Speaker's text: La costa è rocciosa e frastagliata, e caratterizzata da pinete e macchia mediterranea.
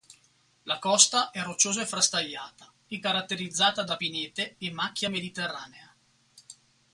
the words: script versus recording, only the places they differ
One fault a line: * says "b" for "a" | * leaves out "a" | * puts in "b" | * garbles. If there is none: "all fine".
all fine